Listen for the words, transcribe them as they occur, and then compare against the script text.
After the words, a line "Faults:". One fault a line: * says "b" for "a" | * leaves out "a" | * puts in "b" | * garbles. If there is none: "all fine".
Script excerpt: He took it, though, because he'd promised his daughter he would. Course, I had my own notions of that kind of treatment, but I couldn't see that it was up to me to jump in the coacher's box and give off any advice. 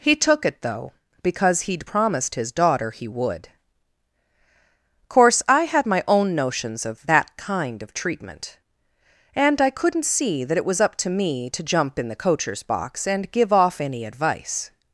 He took it, though, because he'd promised his daughter he would. Course, I had my own notions of that kind of treatment, and I couldn't see that it was up to me to jump in the coacher's box and give off any advice.
Faults:
* says "and" for "but"